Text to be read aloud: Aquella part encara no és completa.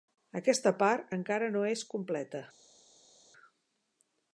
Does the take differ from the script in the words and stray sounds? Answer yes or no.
yes